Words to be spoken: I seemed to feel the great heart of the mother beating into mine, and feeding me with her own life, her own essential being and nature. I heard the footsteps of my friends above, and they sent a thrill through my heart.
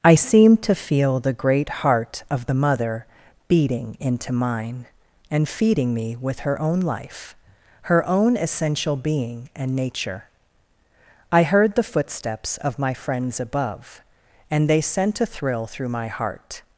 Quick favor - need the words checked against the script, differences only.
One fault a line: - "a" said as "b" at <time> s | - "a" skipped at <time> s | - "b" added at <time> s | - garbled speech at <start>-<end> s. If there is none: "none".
none